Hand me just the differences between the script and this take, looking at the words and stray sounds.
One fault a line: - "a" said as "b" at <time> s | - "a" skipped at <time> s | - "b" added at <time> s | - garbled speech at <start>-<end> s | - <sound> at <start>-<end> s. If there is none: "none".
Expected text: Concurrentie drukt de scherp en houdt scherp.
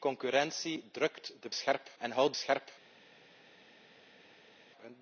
none